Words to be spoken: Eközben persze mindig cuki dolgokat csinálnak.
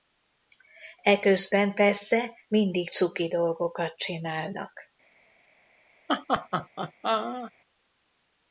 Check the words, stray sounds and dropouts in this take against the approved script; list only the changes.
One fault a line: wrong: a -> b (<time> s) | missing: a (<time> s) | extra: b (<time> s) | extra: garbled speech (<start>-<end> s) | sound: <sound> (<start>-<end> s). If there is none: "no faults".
sound: laugh (6.1-7.5 s)